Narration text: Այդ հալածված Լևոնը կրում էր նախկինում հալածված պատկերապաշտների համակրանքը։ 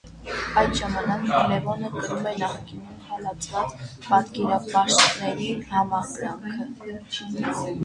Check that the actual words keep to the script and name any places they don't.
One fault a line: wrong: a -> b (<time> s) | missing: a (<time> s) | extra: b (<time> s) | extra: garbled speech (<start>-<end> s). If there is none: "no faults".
wrong: հալածված -> ժամանակ (0.8 s)